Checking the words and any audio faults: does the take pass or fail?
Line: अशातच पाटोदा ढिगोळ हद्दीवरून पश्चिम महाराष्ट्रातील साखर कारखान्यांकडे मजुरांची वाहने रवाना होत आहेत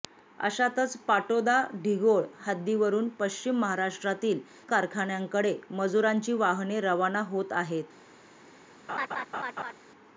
fail